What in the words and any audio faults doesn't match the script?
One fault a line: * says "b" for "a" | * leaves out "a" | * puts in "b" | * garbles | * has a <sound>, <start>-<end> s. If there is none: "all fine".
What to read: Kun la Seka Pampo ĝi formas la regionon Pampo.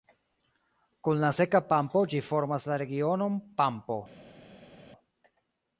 all fine